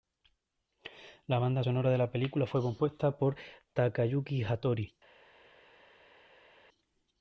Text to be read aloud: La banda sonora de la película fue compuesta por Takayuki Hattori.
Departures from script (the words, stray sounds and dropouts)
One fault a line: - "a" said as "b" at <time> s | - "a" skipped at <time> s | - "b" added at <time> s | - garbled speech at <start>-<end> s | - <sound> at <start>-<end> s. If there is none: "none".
none